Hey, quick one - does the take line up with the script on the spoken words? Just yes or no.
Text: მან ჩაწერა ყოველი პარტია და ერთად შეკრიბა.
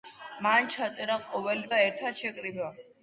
no